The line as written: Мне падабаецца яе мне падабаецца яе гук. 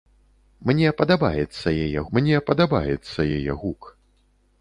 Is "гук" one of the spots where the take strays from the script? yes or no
no